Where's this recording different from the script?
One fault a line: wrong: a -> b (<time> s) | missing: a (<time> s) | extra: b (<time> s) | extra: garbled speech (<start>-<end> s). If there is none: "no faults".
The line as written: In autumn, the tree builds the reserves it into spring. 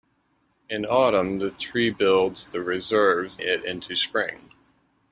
no faults